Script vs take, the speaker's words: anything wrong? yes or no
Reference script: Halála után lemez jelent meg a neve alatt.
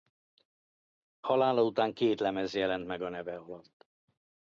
yes